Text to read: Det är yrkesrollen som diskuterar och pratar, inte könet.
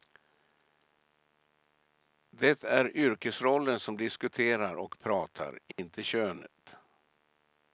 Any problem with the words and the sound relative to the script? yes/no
yes